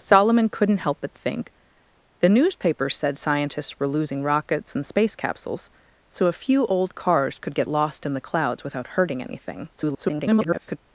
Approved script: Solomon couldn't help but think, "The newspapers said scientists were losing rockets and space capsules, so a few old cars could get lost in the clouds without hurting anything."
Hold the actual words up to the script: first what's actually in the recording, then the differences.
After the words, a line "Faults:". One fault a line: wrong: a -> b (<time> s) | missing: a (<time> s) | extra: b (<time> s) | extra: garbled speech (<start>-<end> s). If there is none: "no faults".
Solomon couldn't help but think, "The newspapers said scientists were losing rockets and space capsules, so a few old cars could get lost in the clouds without hurting anything." [garbled]
Faults:
extra: garbled speech (9.8-10.8 s)